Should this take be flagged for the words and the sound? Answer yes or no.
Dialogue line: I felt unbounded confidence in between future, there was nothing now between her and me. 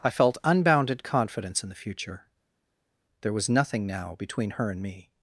yes